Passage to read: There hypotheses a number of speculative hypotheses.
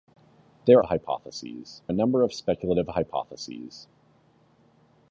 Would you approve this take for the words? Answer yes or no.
yes